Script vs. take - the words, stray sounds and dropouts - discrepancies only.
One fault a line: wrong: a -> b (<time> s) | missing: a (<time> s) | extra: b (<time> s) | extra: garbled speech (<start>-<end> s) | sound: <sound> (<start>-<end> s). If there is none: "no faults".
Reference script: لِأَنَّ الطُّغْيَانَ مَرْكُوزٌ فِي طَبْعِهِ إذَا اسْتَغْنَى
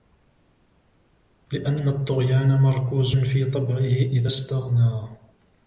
no faults